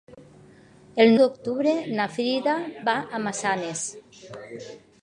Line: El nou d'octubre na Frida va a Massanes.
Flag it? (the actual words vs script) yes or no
yes